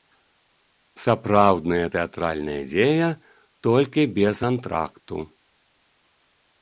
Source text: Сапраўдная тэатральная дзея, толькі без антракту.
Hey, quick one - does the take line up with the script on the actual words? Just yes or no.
yes